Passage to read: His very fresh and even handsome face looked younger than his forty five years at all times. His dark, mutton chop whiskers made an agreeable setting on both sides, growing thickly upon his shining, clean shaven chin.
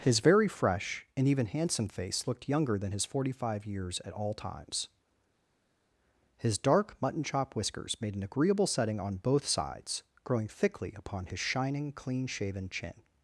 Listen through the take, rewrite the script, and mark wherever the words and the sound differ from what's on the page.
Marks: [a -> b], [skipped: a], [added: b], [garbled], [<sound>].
His very fresh and even handsome face looked younger than his forty five years at all times. His dark, mutton chop whiskers made an agreeable setting on both sides, growing thickly upon his shining, clean shaven chin.